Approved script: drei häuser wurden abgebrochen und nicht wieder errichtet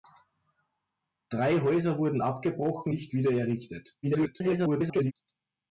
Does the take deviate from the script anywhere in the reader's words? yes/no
yes